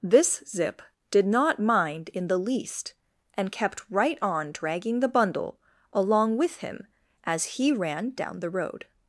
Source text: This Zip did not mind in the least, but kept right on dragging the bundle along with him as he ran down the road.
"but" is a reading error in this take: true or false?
true